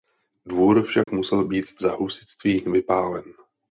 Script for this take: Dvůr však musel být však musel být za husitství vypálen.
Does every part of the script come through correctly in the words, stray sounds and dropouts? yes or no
no